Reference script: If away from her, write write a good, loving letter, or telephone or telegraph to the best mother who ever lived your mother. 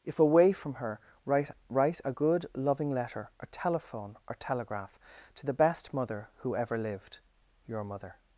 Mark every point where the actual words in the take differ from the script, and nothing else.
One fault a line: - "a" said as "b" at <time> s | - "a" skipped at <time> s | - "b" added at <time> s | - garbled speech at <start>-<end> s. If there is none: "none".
none